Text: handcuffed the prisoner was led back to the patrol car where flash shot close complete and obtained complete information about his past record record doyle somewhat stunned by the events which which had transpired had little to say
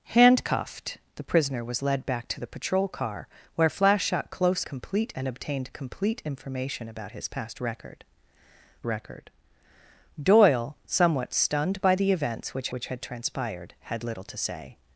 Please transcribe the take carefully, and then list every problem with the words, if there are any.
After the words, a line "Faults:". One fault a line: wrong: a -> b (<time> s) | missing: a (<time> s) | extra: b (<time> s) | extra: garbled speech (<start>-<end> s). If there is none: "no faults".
handcuffed the prisoner was led back to the patrol car where flash shot close complete and obtained complete information about his past record record doyle somewhat stunned by the events which which had transpired had little to say
Faults:
no faults